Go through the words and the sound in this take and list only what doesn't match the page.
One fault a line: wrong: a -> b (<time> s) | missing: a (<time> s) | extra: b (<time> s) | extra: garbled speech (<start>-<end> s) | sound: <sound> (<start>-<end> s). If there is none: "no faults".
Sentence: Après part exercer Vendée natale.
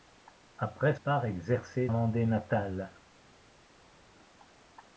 no faults